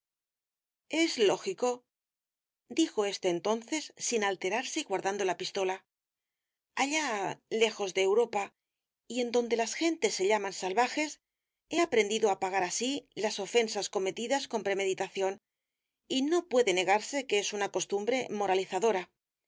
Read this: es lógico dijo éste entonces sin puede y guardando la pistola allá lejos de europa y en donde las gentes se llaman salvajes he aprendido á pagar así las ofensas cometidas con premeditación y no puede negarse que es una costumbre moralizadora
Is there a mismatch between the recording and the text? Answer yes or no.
yes